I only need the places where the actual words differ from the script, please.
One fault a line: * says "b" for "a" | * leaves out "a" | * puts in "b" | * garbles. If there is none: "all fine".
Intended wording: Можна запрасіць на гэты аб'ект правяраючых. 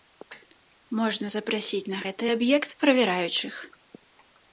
all fine